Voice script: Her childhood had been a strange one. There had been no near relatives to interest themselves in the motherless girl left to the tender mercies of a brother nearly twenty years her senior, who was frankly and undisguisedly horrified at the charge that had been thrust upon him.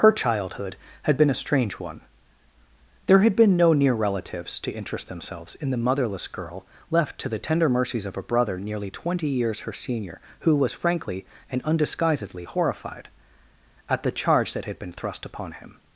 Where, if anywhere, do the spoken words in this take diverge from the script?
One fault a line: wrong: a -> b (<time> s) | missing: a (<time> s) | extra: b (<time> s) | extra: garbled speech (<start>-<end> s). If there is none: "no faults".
no faults